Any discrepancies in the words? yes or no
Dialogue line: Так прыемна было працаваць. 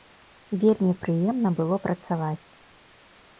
yes